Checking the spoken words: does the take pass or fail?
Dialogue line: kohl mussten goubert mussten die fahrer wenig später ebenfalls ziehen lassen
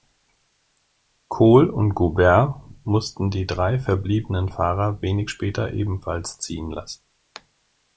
fail